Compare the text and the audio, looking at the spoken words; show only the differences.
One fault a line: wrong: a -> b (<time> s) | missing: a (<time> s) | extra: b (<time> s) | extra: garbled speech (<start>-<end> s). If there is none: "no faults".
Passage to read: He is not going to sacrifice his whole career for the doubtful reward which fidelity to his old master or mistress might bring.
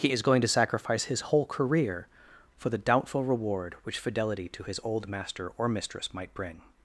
missing: not (0.2 s)